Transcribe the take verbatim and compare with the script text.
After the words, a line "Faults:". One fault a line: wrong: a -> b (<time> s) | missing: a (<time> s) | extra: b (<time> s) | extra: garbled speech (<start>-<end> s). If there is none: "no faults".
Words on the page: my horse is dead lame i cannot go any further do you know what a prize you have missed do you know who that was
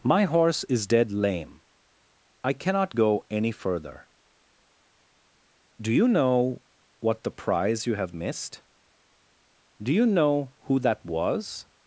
my horse is dead lame i cannot go any further do you know what the prize you have missed do you know who that was
Faults:
wrong: a -> the (7.2 s)